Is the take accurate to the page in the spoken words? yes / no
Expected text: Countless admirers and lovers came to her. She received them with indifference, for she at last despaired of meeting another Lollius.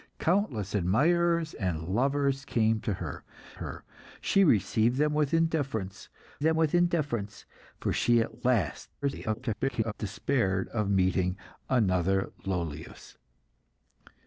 no